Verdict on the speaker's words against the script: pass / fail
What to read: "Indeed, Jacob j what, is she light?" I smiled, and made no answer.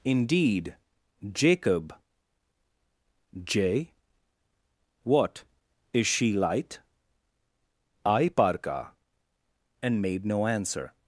fail